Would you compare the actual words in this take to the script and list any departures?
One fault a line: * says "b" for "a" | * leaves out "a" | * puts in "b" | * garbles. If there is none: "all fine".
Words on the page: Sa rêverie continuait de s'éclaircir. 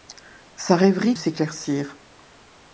* leaves out "continuait de"